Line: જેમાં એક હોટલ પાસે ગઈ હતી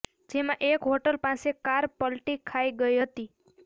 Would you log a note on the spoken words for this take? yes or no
yes